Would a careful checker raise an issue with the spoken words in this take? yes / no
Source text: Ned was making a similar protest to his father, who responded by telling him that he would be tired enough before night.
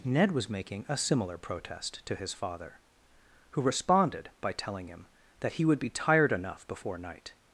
no